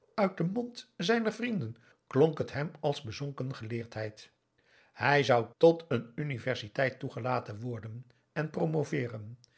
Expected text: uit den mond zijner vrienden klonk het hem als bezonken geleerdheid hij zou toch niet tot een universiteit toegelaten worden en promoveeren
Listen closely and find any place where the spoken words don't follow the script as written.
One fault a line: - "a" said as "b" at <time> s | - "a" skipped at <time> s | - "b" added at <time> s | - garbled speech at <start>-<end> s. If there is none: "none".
- "toch niet" skipped at 5.5 s